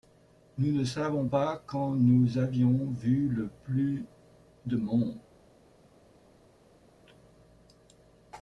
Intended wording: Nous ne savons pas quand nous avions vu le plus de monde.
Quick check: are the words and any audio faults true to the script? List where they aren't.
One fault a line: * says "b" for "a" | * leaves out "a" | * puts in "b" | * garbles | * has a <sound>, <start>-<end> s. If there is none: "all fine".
all fine